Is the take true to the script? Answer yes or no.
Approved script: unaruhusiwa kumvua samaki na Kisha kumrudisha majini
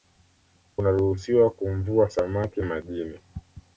no